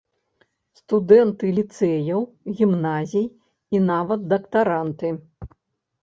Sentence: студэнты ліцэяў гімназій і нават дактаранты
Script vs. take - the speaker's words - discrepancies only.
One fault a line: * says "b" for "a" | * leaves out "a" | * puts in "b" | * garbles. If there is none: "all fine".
all fine